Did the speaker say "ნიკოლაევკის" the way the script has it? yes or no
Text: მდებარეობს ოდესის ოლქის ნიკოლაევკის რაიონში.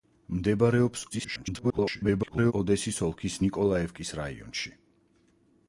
yes